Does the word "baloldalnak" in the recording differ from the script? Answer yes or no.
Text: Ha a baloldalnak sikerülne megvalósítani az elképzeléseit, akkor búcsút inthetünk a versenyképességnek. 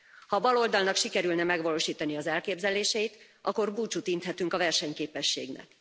no